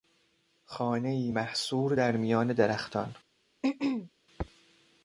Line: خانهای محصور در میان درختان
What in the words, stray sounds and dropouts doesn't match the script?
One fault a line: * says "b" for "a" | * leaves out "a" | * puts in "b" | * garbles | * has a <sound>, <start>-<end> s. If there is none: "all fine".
* has a throat clearing, 3.6-4.1 s